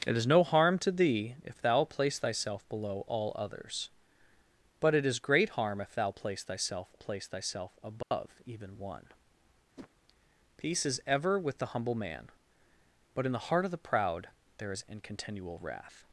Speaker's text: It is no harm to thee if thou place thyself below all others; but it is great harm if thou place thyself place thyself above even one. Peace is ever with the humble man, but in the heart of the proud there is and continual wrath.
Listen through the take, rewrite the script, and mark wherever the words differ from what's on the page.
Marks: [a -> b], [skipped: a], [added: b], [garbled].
It is no harm to thee if thou place thyself below all others; but it is great harm if thou place thyself place thyself above even one. Peace is ever with the humble man, but in the heart of the proud there is and continual wrath.